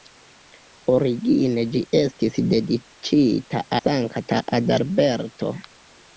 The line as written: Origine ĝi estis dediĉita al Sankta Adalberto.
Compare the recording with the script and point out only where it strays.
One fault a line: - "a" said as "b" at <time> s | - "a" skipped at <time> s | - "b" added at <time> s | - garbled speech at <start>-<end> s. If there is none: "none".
- "al" skipped at 3.6 s